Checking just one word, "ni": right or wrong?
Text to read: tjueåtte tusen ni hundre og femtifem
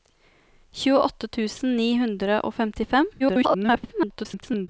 right